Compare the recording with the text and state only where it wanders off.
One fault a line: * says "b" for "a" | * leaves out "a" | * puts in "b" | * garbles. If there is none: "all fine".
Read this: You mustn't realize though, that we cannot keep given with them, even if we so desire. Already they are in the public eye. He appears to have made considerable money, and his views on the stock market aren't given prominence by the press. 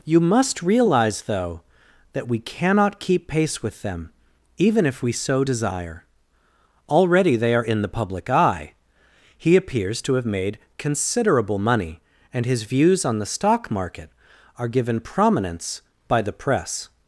* says "must" for "mustn't"
* says "pace" for "given"
* says "are" for "aren't"